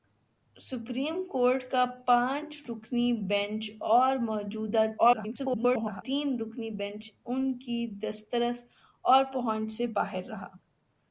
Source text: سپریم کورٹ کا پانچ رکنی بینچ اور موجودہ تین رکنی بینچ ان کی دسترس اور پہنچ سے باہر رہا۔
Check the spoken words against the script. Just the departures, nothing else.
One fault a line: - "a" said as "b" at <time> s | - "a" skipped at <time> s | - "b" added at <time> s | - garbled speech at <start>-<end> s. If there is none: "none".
- garbled speech at 5.0-6.0 s